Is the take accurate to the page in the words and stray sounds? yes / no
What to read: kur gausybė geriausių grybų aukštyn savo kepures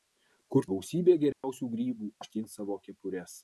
no